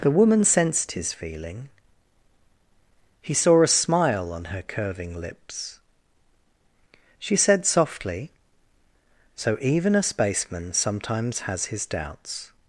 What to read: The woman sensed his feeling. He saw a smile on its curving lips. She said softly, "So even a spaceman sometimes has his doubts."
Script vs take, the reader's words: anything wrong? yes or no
yes